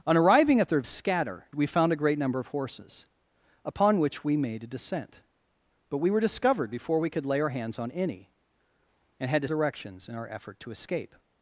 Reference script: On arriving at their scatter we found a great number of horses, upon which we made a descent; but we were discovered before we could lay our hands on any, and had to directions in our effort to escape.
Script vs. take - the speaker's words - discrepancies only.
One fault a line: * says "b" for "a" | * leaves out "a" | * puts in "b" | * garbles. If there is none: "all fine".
all fine